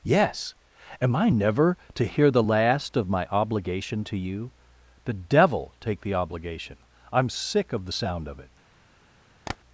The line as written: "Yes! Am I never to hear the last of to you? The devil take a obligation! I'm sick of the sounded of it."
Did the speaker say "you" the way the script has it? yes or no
yes